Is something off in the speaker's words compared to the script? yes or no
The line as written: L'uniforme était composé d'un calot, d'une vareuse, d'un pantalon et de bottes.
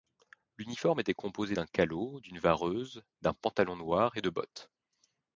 yes